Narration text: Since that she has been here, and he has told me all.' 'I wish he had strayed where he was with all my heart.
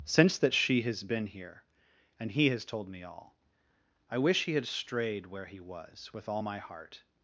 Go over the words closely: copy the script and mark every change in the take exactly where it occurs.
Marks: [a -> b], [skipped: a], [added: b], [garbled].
Since that she has been here, and he has told me all.' 'I wish he had strayed where he was with all my heart.